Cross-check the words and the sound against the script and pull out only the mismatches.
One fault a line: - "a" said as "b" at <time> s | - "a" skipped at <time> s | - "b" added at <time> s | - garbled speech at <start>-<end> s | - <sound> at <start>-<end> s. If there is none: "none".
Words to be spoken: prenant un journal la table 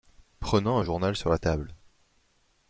- "sur" added at 1.1 s